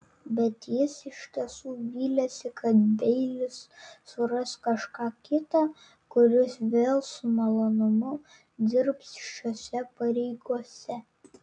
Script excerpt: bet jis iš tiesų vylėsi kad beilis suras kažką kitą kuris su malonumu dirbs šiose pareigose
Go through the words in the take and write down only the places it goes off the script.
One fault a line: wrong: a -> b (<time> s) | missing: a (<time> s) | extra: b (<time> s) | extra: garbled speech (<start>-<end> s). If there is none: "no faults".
extra: vėl (6.8 s)